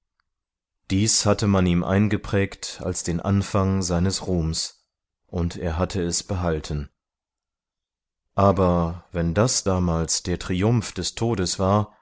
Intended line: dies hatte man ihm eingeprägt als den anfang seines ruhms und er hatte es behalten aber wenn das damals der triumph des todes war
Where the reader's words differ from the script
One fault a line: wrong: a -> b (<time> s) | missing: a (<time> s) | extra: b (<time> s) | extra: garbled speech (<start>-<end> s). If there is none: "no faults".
no faults